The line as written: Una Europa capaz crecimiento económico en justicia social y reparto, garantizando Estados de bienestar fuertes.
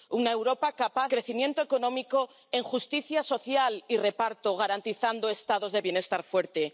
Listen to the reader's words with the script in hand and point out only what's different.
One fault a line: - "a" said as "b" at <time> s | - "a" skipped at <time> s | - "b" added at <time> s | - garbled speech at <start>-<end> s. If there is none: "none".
none